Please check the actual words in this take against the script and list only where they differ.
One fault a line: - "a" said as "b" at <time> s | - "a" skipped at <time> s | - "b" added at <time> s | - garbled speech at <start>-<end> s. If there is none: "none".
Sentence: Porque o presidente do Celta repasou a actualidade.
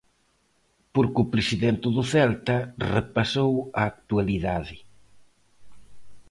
none